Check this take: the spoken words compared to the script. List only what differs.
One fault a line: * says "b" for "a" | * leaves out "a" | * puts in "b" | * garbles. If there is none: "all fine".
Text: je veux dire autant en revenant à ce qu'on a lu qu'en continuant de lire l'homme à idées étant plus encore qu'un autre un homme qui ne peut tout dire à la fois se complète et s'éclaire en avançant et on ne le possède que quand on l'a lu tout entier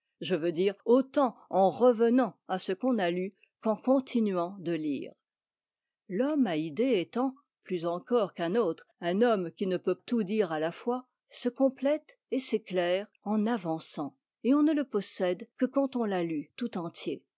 all fine